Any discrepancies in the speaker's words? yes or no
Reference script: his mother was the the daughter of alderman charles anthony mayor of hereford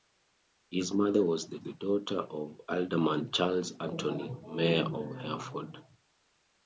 no